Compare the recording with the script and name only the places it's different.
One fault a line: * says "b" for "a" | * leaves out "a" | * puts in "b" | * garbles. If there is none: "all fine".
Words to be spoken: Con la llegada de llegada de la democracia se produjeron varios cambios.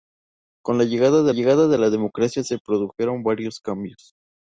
all fine